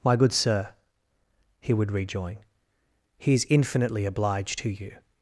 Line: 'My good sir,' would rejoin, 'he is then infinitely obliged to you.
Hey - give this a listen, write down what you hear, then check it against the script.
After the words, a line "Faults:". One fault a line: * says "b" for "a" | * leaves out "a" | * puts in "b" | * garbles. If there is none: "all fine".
'My good sir,' he would rejoin, 'he is infinitely obliged to you.
Faults:
* puts in "he"
* leaves out "then"